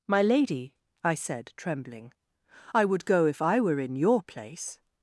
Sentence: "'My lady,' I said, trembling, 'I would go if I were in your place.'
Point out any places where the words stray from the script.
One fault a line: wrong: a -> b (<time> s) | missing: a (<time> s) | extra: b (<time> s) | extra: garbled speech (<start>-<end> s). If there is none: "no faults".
no faults